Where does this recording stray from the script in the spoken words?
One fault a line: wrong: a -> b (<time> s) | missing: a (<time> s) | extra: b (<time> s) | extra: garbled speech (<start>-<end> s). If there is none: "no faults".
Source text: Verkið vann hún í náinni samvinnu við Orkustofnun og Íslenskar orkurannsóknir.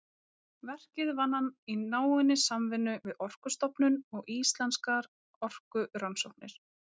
wrong: hún -> hann (1.4 s)